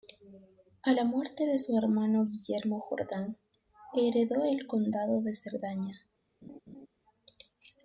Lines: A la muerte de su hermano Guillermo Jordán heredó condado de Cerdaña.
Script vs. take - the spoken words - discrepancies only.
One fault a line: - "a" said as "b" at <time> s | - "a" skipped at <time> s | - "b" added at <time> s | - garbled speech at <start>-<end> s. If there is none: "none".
- "el" added at 4.4 s